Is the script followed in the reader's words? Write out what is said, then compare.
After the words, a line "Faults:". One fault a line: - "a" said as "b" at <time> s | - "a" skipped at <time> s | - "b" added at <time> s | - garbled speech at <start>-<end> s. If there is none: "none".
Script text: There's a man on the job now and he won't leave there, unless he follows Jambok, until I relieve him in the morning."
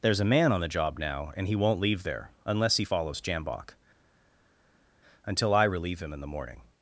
There's a man on the job now and he won't leave there, unless he follows Jambok, until I relieve him in the morning."
Faults:
none